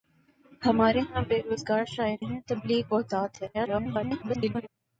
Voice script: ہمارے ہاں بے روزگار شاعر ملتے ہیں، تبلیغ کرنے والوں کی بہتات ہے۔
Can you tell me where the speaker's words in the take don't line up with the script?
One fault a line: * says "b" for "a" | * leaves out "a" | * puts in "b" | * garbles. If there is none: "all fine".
* leaves out "ملتے"
* leaves out "کرنے والوں کی"
* garbles